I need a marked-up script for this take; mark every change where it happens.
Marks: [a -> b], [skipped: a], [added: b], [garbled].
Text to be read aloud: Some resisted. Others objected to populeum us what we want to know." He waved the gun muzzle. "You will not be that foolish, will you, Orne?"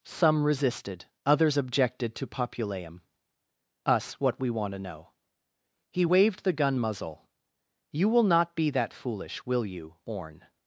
Some resisted. Others objected to populeum us what we want to know." He waved the gun muzzle. "You will not be that foolish, will you, Orne?"